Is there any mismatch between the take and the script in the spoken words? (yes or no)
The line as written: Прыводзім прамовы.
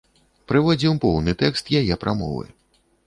yes